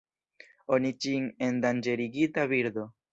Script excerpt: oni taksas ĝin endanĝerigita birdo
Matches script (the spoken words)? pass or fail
fail